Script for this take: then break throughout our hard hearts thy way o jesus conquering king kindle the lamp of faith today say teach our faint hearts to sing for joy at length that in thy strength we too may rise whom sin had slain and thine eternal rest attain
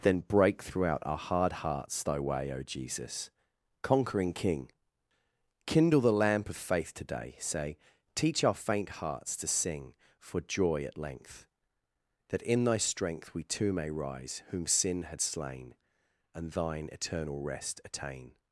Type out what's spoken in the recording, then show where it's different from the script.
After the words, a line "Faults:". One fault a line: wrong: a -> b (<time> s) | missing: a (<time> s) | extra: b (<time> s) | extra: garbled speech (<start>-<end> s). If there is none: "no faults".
then break throughout our hard hearts thy way o jesus conquering king kindle the lamp of faith today say teach our faint hearts to sing for joy at length that in thy strength we too may rise whom sin had slain and thine eternal rest attain
Faults:
no faults